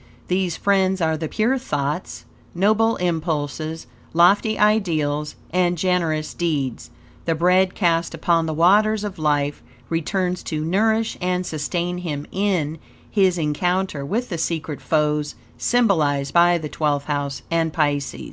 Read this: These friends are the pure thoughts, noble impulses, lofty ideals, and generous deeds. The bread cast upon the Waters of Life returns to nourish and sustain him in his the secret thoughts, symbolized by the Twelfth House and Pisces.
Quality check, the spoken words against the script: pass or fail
fail